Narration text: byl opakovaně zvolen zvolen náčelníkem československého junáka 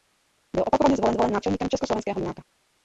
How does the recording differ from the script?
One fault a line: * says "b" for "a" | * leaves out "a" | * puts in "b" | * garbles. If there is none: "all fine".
all fine